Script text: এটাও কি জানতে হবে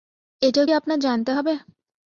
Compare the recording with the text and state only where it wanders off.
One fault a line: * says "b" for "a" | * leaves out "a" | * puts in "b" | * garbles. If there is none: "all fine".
* puts in "আপনার"